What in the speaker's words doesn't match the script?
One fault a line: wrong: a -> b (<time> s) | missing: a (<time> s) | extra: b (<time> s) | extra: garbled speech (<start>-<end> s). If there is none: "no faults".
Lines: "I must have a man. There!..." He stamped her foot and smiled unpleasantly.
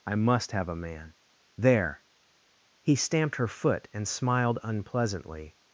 no faults